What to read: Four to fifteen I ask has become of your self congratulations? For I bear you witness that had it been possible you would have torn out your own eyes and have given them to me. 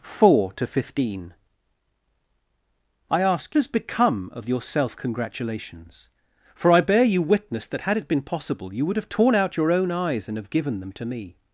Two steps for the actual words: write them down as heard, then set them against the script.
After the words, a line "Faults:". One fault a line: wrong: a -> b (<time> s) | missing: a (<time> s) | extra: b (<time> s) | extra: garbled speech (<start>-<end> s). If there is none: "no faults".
Four to fifteen I ask has become of your self congratulations? For I bear you witness that had it been possible you would have torn out your own eyes and have given them to me.
Faults:
no faults